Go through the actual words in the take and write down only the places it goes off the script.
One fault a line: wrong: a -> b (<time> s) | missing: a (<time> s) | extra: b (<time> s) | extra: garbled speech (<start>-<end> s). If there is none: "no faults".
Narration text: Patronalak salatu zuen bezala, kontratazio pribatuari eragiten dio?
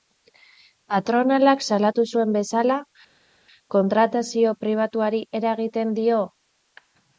no faults